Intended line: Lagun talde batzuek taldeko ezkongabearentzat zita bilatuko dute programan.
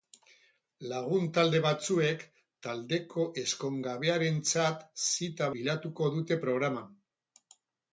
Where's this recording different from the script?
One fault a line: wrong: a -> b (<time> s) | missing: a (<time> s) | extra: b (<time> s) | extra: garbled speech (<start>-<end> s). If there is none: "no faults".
no faults